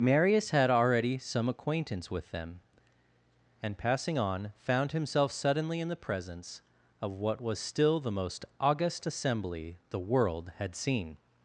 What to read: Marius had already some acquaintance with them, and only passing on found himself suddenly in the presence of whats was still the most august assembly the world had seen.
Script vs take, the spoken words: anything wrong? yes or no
yes